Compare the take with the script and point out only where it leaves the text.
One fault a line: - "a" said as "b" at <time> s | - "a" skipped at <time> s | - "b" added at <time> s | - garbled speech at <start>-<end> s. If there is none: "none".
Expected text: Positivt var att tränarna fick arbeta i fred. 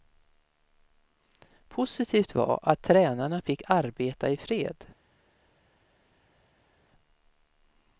none